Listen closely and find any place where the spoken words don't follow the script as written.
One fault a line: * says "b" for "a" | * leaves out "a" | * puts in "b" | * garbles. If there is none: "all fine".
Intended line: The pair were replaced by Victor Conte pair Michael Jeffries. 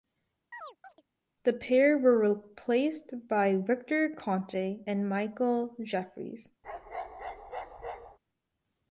* says "and" for "pair"